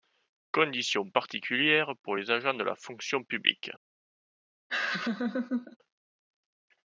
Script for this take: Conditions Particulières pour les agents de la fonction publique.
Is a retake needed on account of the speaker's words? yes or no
no